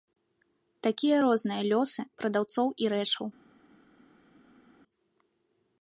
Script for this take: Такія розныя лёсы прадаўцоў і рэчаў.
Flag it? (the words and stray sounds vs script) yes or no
no